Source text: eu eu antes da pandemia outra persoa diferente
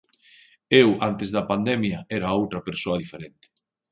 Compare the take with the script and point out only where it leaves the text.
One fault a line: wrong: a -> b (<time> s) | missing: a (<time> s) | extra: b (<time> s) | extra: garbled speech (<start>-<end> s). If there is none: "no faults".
missing: eu (1.0 s)
extra: era (2.2 s)